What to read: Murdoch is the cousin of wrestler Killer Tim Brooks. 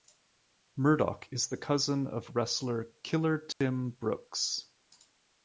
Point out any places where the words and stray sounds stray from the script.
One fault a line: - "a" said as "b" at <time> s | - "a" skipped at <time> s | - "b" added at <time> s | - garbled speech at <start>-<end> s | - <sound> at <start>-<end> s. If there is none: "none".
- dropout at 3.5-3.6 s